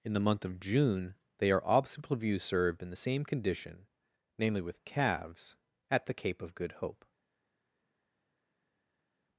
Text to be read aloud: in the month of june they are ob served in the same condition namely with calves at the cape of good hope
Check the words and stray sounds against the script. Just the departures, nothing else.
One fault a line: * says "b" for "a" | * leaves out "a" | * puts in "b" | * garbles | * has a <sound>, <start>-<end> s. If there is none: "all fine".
* says "obstacle view" for "ob"